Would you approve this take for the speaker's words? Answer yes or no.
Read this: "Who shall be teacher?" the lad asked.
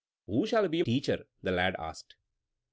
yes